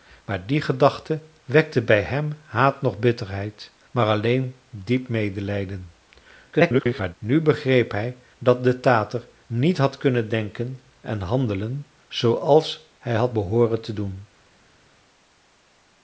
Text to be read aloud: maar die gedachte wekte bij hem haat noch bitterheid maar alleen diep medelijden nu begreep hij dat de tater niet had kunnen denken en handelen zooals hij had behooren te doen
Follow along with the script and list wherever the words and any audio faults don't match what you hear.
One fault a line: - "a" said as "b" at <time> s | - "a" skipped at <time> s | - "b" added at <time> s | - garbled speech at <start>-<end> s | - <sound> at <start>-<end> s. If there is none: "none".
- garbled speech at 6.5-7.2 s